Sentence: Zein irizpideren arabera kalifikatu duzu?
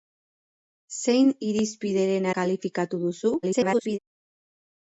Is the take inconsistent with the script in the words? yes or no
yes